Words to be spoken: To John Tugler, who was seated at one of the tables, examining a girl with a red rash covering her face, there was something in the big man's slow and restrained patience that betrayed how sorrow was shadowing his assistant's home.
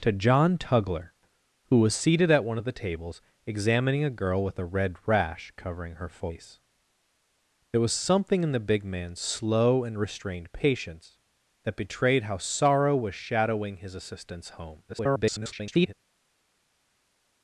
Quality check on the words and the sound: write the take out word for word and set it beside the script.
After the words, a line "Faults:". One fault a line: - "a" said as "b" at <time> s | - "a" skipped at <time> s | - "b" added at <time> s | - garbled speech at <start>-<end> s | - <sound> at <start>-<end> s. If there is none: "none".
To John Tugler, who was seated at one of the tables, examining a girl with a red rash covering her face, there was something in the big man's slow and restrained patience that betrayed how sorrow was shadowing his assistant's home. [garbled]
Faults:
- garbled speech at 14.9-15.9 s